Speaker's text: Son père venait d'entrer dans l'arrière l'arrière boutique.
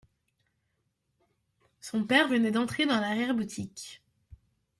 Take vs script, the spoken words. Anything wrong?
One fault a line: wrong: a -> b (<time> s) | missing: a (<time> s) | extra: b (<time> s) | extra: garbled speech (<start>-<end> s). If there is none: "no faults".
missing: l'arrière (3.3 s)